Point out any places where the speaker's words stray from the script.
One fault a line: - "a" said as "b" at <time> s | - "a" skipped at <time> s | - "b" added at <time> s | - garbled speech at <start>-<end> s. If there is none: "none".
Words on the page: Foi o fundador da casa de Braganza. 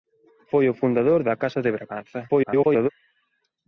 - garbled speech at 2.3-2.9 s